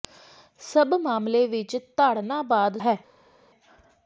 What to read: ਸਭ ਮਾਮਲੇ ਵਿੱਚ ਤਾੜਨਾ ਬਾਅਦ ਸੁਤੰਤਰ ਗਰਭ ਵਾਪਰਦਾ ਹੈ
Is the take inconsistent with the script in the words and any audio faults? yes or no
yes